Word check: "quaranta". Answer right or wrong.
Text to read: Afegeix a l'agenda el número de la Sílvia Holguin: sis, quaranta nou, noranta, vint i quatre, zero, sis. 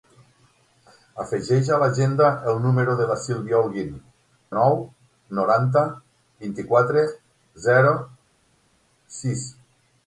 wrong